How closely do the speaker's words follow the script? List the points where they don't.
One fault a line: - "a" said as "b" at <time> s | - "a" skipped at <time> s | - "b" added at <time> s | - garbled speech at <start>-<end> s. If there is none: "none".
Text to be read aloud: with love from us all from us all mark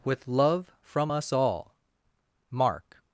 - "from us all" skipped at 1.8 s